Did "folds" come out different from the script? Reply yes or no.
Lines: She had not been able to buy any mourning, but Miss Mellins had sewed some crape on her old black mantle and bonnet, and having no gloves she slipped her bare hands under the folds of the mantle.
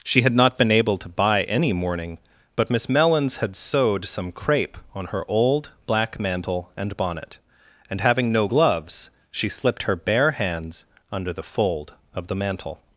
yes